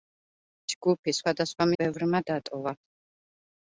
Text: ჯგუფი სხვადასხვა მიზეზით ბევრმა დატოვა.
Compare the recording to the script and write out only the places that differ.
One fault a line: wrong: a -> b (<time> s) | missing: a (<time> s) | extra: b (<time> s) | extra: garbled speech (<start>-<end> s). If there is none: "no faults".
missing: მიზეზით (1.7 s)